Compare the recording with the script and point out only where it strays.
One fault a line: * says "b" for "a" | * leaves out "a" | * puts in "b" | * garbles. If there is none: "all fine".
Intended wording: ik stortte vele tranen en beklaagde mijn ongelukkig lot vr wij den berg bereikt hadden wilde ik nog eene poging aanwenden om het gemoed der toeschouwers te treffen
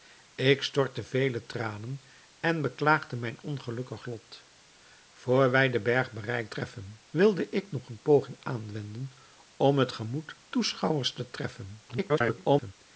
* says "treffen" for "hadden"
* leaves out "der"
* garbles